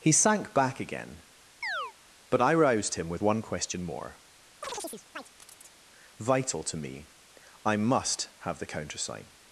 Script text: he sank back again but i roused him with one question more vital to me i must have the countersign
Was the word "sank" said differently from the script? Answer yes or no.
no